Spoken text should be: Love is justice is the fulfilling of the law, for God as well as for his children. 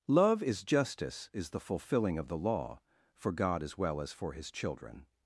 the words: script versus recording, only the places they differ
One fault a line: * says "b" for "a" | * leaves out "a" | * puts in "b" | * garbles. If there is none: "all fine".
all fine